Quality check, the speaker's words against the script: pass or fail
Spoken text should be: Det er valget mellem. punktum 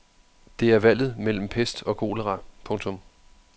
fail